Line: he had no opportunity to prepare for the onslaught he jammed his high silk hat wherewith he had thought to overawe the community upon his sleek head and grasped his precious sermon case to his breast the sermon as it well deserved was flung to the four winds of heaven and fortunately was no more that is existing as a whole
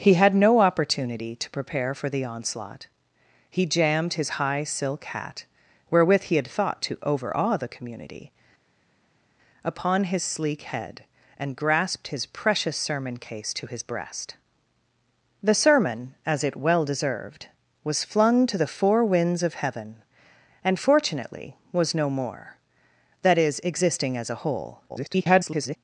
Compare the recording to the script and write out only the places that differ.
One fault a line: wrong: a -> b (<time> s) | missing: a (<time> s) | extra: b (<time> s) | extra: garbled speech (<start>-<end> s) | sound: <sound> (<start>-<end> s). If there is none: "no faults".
extra: garbled speech (24.9-25.8 s)